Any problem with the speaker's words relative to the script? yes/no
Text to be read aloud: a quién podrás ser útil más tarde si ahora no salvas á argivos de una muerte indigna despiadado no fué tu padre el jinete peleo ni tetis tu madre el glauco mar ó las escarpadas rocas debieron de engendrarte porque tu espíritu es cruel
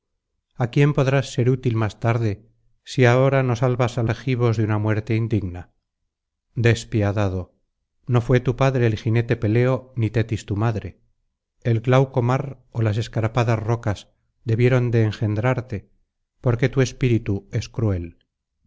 no